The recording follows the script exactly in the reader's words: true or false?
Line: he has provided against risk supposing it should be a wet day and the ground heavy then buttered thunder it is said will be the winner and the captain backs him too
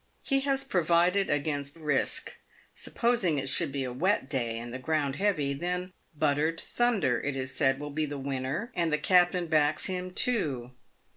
true